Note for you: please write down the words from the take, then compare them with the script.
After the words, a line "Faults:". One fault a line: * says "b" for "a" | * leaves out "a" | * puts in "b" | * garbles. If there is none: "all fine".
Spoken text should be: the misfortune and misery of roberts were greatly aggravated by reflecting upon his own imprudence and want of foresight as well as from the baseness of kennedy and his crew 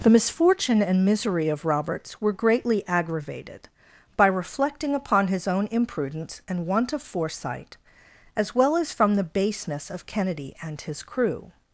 the misfortune and misery of roberts were greatly aggravated by reflecting upon his own imprudence and want of foresight as well as from the baseness of kennedy and his crew
Faults:
all fine